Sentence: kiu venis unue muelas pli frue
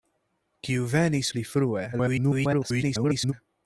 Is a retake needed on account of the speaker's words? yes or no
yes